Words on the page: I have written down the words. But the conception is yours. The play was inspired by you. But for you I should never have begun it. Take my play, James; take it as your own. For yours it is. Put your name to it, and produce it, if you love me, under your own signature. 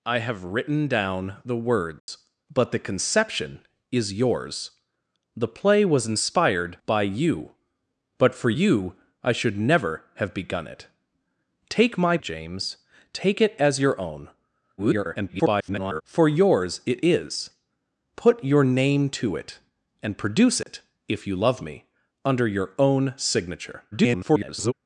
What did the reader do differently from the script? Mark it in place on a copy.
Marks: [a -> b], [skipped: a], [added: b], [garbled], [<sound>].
I have written down the words. [dropout] But the conception is yours. The play was inspired by you. But for you I should never have begun it. Take my [skipped: play,] James; take it as your own. [garbled] For yours it is. Put your name to it, and produce it, [dropout] if you love me, under your own signature. [garbled]